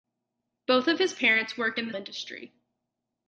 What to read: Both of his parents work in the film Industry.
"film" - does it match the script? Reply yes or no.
no